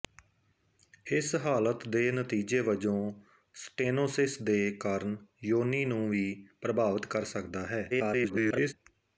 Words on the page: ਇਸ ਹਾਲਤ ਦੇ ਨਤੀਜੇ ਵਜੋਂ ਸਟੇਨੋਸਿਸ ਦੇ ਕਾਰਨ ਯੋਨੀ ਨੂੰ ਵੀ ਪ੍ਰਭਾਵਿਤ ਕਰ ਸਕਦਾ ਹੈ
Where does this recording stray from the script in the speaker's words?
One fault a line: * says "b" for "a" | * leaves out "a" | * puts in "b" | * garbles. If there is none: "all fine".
* garbles